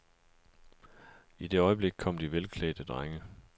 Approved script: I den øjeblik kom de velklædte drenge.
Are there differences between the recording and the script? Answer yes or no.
yes